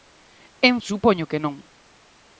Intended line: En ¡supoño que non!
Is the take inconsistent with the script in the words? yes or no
no